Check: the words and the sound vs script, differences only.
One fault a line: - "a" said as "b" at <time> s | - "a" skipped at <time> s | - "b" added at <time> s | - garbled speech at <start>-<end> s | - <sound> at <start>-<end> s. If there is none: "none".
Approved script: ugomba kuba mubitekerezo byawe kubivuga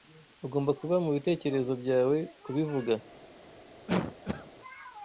- cough at 3.9-4.5 s